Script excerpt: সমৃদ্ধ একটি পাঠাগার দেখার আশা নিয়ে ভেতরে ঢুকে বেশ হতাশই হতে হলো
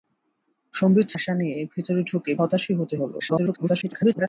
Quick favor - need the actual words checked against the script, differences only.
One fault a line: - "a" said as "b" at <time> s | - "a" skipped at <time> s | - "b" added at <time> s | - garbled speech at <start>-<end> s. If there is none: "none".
- "একটি পাঠাগার দেখার" skipped at 1.1 s
- "বেশ" skipped at 2.3 s
- garbled speech at 3.2-4.3 s